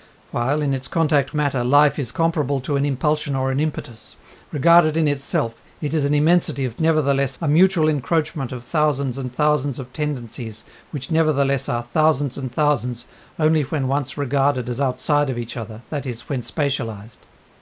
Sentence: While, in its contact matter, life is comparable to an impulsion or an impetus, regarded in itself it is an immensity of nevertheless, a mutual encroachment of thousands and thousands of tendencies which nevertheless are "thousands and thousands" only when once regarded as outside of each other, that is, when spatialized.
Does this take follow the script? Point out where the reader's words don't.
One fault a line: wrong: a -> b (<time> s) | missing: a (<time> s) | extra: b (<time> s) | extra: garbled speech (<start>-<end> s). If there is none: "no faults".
no faults